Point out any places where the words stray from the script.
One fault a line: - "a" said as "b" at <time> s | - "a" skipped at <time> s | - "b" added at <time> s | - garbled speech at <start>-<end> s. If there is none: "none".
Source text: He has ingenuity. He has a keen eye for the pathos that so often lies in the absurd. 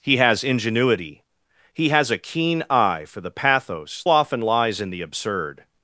- "that so" skipped at 4.0 s